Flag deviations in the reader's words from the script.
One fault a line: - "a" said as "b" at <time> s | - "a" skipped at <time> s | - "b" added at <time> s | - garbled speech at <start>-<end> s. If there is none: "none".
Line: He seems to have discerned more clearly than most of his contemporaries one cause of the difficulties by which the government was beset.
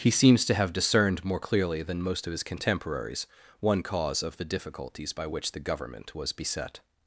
none